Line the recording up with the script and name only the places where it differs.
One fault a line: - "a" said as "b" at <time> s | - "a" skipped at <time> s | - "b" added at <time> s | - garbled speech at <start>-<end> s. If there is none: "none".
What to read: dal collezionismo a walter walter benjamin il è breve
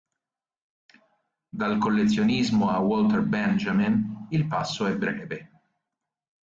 - "walter" skipped at 3.2 s
- "passo" added at 4.5 s